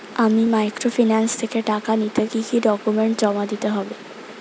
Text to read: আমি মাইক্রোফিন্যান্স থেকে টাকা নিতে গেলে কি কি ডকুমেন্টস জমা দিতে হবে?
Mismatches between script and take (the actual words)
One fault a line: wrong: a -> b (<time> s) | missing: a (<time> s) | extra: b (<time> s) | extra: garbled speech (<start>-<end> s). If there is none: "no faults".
missing: গেলে (2.2 s)